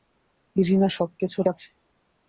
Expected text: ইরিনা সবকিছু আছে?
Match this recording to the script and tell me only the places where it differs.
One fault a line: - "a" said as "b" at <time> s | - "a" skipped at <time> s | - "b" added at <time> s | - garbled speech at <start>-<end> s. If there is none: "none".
none